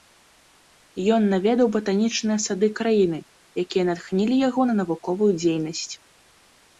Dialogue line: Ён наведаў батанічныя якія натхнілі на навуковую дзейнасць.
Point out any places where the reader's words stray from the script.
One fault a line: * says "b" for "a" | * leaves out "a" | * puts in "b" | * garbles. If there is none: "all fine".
* puts in "сады краіны"
* puts in "яго"